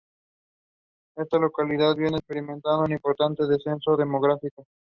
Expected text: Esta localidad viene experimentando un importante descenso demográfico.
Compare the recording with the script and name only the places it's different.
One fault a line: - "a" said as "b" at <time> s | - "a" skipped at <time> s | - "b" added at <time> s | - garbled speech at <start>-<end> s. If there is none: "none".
none